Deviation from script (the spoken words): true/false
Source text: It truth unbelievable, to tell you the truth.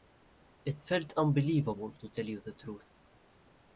true